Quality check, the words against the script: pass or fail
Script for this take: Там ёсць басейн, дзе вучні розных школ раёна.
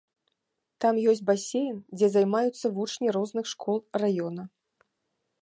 fail